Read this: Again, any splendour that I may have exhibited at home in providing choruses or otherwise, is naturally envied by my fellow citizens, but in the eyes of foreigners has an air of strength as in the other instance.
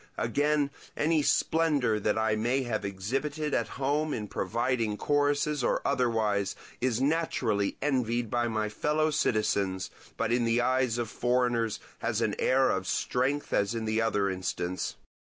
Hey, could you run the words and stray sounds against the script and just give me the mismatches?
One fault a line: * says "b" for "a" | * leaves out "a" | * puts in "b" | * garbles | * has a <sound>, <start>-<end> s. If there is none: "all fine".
all fine